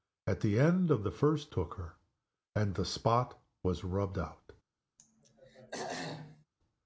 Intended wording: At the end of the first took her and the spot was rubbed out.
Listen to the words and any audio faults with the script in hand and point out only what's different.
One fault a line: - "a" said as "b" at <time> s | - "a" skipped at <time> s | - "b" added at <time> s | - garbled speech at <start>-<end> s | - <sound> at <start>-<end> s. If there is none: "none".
- throat clearing at 5.0-6.5 s